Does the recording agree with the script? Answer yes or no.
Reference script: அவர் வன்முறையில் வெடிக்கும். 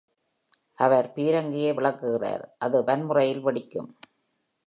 no